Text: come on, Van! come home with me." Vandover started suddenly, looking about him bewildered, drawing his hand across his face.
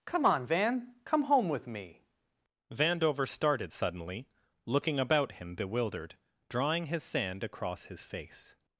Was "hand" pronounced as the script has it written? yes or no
no